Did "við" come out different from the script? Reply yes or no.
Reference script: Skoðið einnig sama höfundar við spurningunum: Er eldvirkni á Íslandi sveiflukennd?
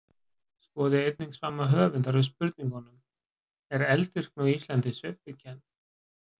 no